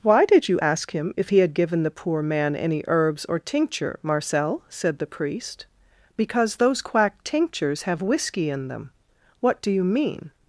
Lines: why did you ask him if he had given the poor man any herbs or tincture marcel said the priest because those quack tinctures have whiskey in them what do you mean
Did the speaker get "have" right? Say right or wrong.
right